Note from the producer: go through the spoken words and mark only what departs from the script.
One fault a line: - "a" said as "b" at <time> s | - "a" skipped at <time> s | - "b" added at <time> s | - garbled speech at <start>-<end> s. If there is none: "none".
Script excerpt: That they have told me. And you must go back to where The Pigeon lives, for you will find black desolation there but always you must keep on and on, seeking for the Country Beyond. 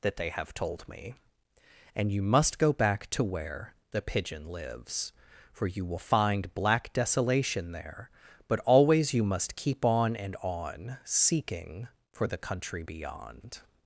none